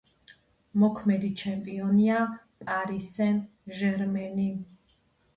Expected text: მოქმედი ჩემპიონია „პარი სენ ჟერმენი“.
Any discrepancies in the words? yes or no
no